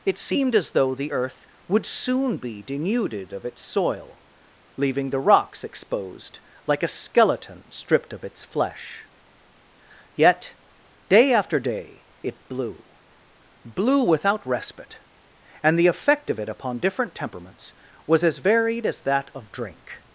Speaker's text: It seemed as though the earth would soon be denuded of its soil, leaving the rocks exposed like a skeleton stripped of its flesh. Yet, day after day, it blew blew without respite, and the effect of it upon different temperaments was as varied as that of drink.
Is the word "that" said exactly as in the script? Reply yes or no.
yes